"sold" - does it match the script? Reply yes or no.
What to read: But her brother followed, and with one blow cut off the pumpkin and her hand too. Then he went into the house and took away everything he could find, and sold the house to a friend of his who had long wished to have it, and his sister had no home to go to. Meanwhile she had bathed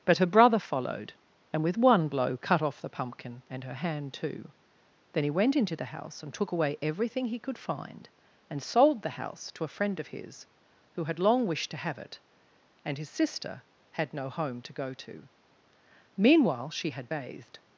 yes